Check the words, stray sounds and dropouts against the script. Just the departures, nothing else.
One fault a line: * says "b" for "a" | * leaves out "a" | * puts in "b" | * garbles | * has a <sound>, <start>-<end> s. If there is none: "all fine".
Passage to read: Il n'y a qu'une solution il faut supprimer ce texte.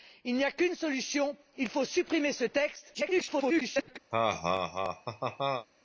* garbles
* has a laugh, 4.1-5.7 s